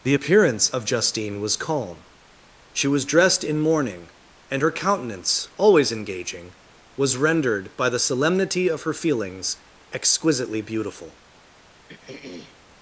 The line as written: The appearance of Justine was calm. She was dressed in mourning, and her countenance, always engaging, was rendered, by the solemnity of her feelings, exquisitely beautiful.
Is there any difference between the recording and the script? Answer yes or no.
no